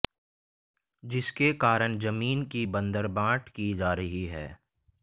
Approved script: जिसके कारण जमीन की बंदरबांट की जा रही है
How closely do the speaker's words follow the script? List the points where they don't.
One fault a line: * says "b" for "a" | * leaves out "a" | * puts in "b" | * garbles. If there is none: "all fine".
all fine